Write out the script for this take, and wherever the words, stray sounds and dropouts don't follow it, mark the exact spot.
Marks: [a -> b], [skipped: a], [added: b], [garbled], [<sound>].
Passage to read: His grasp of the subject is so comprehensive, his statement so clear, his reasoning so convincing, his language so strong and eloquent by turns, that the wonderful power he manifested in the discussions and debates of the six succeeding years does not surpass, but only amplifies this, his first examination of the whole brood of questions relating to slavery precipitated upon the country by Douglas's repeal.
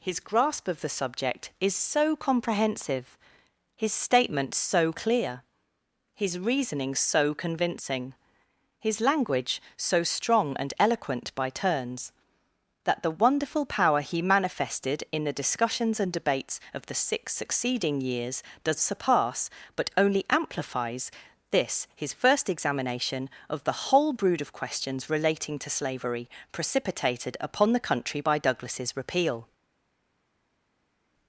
His grasp of the subject is so comprehensive, his statement so clear, his reasoning so convincing, his language so strong and eloquent by turns, that the wonderful power he manifested in the discussions and debates of the six succeeding years does [skipped: not] surpass, but only amplifies this, his first examination of the whole brood of questions relating to slavery precipitated upon the country by Douglas's repeal.